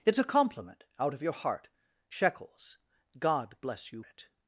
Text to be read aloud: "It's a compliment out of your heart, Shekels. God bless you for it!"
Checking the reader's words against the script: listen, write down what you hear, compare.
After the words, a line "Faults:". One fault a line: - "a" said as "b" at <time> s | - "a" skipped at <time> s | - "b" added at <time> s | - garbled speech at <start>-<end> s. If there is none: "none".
"It's a compliment out of your heart, Shekels. God bless you it!"
Faults:
- "for" skipped at 4.0 s